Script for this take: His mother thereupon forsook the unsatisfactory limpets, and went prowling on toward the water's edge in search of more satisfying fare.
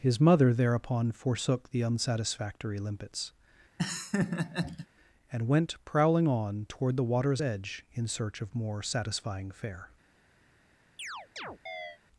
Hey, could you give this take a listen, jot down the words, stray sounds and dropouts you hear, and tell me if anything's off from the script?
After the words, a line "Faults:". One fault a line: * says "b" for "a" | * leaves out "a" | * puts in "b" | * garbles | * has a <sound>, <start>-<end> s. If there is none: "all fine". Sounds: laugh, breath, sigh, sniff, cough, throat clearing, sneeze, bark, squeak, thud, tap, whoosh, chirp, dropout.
His mother thereupon forsook the unsatisfactory limpets, and went prowling on toward the water's edge in search of more satisfying fare.
Faults:
* has a laugh, 3.8-4.9 s
* has a chirp, 11.0-12.0 s